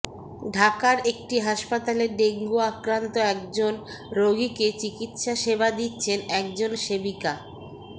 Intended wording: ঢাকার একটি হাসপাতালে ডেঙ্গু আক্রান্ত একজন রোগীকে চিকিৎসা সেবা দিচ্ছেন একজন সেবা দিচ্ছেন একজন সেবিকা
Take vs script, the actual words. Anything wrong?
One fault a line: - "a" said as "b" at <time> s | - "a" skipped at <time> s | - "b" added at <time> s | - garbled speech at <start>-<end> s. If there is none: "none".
- "সেবা দিচ্ছেন একজন" skipped at 6.7 s